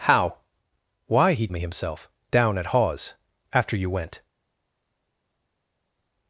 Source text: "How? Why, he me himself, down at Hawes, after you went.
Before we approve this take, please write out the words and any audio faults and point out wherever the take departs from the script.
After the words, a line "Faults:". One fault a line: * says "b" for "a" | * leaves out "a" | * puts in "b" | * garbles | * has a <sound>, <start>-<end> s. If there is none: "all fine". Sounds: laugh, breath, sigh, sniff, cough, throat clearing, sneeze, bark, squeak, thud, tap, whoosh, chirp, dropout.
"How? Why, he me himself, down at Hawes, after you went.
Faults:
all fine